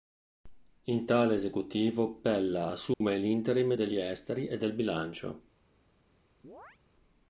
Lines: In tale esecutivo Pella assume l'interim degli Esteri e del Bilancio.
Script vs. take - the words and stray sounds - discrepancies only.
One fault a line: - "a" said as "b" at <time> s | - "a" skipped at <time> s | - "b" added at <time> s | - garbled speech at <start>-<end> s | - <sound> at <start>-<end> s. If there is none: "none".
- dropout at 2.9-3.0 s
- chirp at 6.4-6.8 s